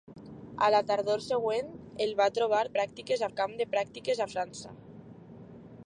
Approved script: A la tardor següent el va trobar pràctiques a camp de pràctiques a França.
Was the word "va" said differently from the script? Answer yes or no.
no